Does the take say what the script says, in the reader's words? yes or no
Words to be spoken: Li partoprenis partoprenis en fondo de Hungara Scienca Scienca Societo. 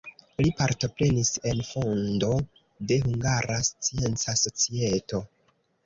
no